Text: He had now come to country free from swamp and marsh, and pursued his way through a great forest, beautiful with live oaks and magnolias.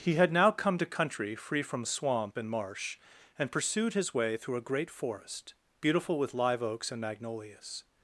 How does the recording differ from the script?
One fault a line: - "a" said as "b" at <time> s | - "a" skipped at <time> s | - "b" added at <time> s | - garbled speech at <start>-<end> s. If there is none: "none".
none